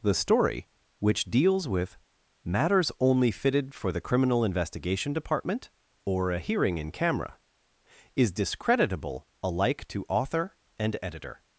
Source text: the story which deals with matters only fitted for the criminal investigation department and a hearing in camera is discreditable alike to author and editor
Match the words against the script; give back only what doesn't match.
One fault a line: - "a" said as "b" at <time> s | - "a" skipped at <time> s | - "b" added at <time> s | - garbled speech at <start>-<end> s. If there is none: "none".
- "and" said as "or" at 6.1 s